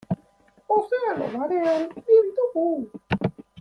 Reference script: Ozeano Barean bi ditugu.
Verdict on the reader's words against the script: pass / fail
pass